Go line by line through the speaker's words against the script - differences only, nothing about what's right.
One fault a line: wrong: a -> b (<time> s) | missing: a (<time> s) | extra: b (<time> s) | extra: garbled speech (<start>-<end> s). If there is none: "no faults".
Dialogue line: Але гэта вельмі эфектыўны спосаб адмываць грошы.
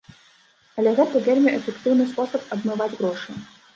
no faults